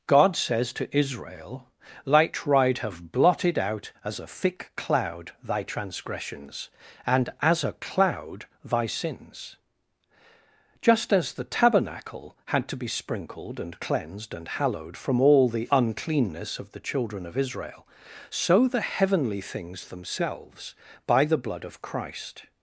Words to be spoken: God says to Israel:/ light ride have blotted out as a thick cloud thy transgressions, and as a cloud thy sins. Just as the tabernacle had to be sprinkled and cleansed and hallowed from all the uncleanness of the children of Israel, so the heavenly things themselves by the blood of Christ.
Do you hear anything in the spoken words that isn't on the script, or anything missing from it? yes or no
no